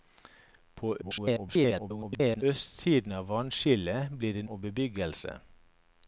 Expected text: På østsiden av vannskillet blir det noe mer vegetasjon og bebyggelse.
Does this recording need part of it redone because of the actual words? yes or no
yes